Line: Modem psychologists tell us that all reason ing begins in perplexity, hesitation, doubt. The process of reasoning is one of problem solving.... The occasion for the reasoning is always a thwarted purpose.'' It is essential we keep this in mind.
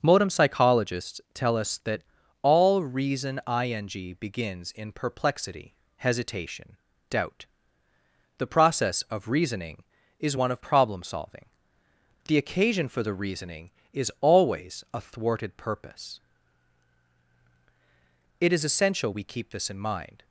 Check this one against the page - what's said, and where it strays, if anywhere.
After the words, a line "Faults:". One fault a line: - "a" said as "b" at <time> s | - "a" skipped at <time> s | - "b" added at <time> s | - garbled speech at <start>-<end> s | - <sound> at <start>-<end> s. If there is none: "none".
Modem psychologists tell us that all reason ing begins in perplexity, hesitation, doubt. The process of reasoning is one of problem solving.... The occasion for the reasoning is always a thwarted purpose.'' It is essential we keep this in mind.
Faults:
none